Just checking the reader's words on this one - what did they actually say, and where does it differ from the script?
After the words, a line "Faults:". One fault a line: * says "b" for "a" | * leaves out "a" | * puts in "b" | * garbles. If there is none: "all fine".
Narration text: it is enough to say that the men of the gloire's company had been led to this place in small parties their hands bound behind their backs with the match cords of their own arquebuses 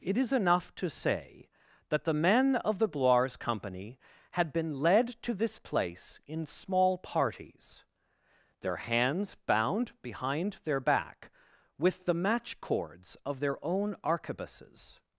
it is enough to say that the men of the gloire's company had been led to this place in small parties their hands bound behind their back with the match cords of their own arquebuses
Faults:
* says "back" for "backs"